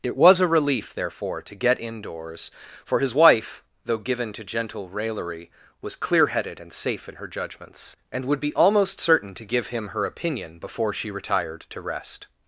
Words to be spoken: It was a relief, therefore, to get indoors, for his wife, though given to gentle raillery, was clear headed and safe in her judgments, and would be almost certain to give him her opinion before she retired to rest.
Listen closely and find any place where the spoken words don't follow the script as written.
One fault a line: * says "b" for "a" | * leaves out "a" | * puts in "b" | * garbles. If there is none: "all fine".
all fine